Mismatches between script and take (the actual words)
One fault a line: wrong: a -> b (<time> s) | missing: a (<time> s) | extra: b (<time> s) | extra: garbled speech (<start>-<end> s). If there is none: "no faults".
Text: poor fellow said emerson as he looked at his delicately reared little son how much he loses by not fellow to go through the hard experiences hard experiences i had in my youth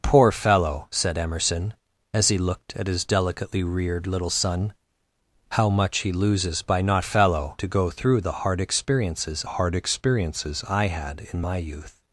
no faults